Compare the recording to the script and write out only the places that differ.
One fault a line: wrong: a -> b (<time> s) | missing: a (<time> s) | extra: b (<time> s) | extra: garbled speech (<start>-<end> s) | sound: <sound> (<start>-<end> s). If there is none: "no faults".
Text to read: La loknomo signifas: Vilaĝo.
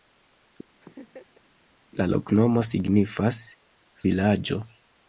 sound: laugh (0.8-1.5 s)